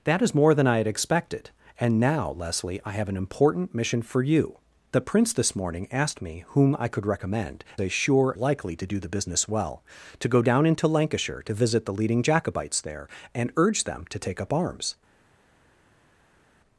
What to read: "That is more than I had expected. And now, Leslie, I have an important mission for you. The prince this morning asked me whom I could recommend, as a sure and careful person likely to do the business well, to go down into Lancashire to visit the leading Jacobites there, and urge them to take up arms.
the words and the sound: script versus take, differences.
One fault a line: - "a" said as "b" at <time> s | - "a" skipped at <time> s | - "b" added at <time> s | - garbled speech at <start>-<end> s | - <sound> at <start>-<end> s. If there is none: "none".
- "as" skipped at 7.6 s
- "and careful person" skipped at 8.3 s